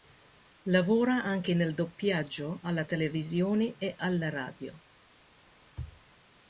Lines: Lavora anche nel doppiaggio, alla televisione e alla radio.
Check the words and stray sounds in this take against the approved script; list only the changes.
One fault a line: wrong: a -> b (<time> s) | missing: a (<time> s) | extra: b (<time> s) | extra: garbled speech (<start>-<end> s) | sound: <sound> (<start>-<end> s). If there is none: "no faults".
no faults